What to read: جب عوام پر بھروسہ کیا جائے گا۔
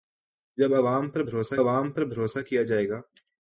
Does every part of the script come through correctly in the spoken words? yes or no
no